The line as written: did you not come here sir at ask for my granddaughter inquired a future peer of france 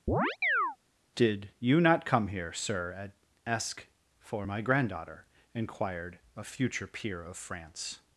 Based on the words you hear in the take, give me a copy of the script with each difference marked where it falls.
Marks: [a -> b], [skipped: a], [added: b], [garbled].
did you not come here sir at ask for my granddaughter inquired a future peer of france